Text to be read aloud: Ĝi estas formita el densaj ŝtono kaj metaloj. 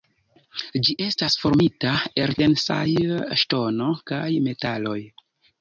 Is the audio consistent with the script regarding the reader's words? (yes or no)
yes